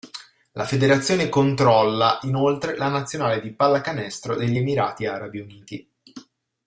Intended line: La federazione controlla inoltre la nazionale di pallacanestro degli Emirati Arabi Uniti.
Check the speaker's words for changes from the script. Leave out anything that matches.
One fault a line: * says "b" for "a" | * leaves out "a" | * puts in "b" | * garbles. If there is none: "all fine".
all fine